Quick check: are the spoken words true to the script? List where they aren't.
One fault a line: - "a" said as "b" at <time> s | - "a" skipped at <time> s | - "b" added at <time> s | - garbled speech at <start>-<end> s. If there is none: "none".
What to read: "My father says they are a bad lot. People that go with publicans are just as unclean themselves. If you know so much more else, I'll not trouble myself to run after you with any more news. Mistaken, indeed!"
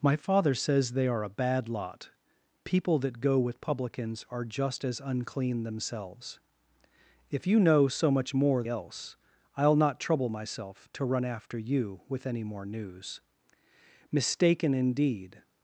none